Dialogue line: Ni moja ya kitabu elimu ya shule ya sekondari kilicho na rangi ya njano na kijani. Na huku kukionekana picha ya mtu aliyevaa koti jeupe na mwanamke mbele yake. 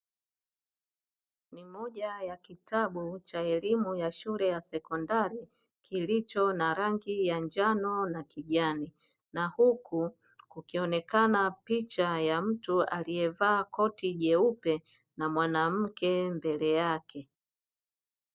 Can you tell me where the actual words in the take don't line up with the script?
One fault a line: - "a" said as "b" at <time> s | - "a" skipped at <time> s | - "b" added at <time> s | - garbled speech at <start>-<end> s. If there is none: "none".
- "cha" added at 3.2 s